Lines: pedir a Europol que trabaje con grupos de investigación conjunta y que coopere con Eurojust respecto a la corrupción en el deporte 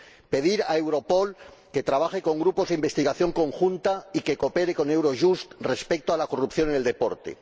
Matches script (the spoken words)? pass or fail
pass